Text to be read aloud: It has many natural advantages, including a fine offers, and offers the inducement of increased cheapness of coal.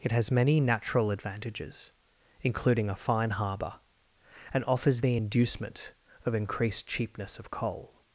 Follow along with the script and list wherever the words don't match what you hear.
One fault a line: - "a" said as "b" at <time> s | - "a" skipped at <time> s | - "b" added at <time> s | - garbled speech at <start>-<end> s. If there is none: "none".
- "offers" said as "harbour" at 3.3 s